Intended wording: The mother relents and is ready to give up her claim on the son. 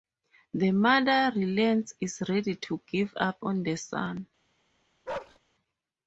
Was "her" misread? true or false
true